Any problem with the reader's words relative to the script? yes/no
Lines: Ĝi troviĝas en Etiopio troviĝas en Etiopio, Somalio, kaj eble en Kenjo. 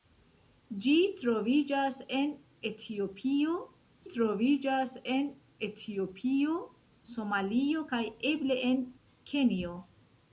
no